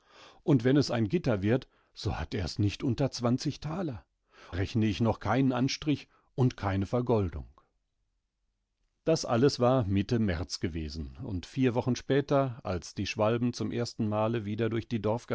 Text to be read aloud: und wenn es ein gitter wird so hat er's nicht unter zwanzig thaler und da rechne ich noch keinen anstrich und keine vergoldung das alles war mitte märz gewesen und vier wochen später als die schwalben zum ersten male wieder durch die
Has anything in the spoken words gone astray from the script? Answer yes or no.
yes